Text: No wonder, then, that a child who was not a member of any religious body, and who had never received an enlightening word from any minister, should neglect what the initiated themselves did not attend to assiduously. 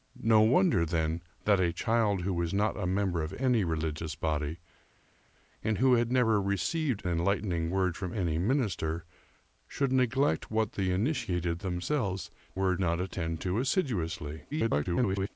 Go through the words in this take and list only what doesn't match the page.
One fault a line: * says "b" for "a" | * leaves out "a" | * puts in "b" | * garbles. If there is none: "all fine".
* leaves out "an"
* says "word" for "did"
* garbles